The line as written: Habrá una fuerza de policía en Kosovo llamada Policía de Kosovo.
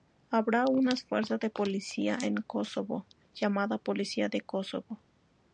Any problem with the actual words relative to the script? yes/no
no